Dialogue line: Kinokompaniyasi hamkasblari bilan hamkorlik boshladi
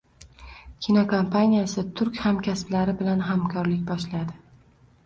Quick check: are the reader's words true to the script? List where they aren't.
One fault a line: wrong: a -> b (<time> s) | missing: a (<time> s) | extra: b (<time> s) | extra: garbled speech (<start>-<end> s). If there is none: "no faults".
extra: turk (2.0 s)